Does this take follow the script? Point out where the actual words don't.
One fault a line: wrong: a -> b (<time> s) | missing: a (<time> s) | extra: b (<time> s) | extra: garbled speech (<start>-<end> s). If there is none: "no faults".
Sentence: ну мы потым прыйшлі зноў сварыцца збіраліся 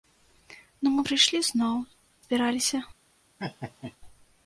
missing: потым (1.0 s)
missing: сварыцца (1.8 s)